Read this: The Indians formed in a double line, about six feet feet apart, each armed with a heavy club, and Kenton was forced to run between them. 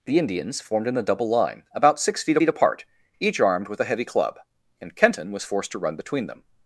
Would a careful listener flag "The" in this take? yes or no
no